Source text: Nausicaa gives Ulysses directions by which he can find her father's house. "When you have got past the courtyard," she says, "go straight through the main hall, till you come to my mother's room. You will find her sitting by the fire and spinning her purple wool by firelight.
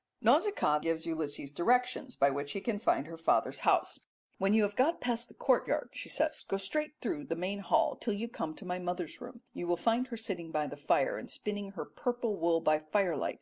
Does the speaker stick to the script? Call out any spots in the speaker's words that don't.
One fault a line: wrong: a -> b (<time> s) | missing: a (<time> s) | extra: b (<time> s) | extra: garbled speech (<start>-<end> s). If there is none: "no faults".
no faults